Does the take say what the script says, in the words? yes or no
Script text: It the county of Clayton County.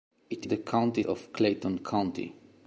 yes